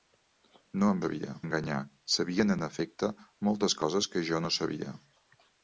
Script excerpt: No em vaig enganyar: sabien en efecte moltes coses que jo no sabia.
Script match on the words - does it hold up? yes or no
no